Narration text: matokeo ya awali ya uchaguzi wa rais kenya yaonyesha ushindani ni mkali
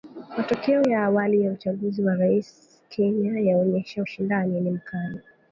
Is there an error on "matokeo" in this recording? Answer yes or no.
no